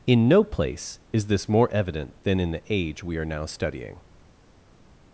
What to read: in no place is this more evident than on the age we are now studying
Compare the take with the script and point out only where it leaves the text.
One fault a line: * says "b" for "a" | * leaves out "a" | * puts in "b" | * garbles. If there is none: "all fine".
* says "in" for "on"